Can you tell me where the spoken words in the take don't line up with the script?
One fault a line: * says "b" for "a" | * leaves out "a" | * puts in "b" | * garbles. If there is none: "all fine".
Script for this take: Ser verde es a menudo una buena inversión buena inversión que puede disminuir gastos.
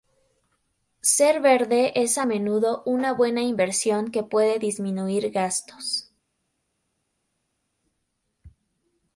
* leaves out "buena inversión"